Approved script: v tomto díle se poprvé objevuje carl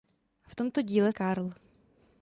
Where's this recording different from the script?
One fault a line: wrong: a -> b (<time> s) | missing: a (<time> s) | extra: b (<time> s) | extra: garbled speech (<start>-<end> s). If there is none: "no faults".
missing: se poprvé objevuje (1.1 s)